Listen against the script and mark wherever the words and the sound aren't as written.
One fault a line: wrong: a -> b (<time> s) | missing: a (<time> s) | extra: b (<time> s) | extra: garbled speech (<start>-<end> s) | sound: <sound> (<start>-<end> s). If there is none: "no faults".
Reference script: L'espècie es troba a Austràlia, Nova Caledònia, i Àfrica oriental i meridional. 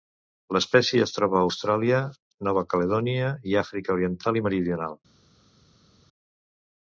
no faults